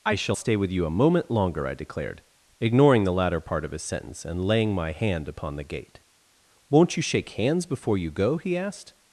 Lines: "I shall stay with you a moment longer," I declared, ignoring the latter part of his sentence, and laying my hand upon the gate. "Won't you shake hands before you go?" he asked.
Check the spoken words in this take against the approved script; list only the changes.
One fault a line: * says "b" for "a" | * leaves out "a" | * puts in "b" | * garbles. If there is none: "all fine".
all fine